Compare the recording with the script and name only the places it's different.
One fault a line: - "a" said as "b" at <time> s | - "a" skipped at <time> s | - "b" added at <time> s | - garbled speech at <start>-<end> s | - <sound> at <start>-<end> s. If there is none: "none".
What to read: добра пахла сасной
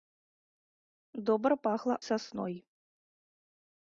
none